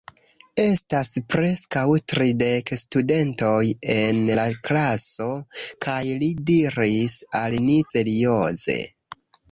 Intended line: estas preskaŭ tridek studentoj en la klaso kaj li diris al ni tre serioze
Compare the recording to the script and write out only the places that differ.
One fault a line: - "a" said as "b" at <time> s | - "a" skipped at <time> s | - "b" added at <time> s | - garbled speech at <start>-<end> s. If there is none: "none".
- "tre" skipped at 7.8 s